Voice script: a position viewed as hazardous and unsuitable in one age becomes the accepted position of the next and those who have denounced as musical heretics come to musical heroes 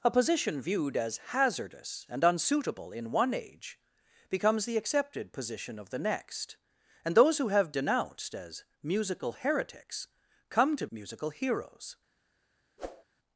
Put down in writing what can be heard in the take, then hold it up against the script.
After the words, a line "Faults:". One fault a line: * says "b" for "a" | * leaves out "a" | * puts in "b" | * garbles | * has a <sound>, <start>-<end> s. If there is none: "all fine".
a position viewed as hazardous and unsuitable in one age becomes the accepted position of the next and those who have denounced as musical heretics come to musical heroes
Faults:
* has a whoosh, 12.8-13.0 s